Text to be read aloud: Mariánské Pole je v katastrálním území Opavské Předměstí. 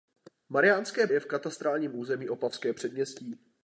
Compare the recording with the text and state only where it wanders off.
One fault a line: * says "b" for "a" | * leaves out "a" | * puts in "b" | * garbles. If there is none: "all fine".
* leaves out "Pole"